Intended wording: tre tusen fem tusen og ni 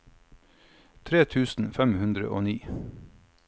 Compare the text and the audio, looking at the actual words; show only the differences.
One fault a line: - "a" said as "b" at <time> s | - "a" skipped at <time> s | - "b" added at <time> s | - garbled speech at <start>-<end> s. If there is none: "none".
- "tusen" said as "hundre" at 2.0 s